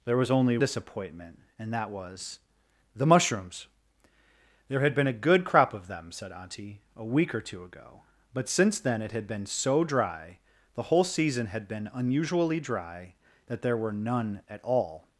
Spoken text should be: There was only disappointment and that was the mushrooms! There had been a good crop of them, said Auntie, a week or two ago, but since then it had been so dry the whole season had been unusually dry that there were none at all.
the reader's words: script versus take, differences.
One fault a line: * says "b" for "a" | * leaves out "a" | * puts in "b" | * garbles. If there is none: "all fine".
all fine